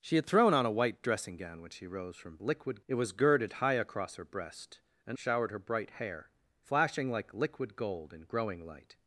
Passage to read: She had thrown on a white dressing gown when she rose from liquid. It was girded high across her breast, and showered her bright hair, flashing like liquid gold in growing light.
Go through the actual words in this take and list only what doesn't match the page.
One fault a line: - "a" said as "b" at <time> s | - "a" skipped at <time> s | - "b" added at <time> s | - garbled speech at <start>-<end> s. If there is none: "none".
none